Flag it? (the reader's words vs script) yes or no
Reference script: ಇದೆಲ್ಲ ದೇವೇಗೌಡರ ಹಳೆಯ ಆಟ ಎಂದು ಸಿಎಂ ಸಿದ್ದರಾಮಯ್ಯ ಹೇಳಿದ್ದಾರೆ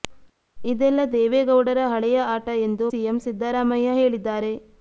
no